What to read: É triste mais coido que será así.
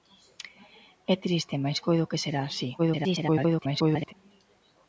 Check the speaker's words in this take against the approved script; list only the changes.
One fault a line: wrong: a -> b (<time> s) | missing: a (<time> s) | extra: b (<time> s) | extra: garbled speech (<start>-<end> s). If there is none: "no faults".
extra: garbled speech (2.8-4.1 s)